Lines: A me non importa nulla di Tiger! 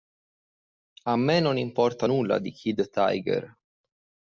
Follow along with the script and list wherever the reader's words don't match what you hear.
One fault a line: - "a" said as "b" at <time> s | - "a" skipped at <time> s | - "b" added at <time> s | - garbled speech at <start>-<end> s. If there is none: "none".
- "Kid" added at 2.5 s